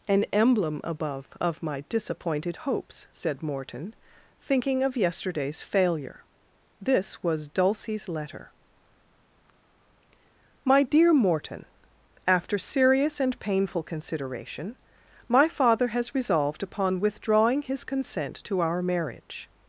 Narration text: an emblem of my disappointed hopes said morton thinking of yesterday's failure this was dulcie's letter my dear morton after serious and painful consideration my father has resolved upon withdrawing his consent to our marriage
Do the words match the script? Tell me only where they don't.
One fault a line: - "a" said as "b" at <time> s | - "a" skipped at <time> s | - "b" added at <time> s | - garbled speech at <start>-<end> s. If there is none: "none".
- "above" added at 0.8 s